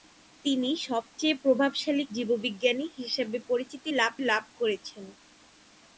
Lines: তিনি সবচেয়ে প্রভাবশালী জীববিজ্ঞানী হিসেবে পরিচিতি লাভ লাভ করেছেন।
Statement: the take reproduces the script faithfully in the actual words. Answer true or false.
true